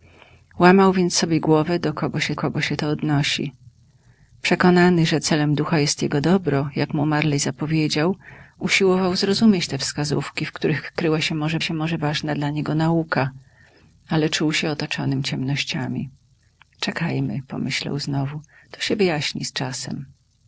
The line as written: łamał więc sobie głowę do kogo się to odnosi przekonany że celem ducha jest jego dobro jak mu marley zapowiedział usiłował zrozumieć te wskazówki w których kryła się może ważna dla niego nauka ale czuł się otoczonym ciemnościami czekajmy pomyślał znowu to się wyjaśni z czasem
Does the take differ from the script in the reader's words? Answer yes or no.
yes